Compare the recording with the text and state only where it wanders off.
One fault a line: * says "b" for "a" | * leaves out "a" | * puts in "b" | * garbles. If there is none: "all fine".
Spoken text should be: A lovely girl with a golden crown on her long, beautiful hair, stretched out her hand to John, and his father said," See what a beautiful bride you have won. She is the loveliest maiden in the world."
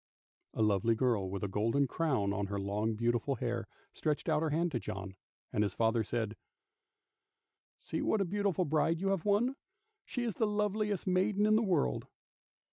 all fine